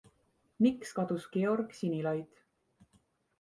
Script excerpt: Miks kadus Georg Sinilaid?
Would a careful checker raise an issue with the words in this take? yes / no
no